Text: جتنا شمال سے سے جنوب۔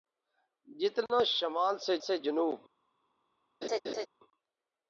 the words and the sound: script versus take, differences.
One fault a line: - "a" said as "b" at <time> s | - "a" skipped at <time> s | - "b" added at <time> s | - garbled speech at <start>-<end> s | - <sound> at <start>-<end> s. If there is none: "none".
- laugh at 3.6-4.1 s